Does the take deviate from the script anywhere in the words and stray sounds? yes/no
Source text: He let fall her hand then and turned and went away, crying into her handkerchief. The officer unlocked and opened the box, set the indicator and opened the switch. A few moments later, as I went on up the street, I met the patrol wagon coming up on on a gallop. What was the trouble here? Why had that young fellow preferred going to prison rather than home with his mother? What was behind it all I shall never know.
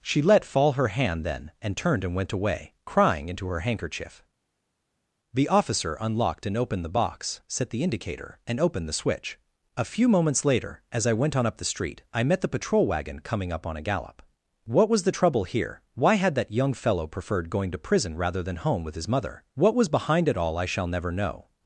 yes